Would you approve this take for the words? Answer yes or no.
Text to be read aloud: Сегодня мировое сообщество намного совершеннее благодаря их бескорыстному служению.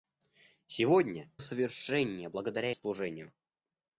no